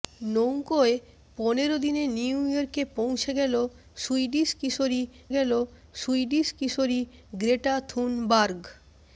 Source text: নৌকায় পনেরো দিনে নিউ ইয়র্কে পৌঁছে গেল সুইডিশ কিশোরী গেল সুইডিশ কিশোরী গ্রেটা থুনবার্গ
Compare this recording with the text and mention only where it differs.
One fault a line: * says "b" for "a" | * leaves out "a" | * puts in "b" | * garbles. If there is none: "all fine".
all fine